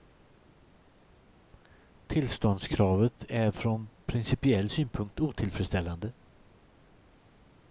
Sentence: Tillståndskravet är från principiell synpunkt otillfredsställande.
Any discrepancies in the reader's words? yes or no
no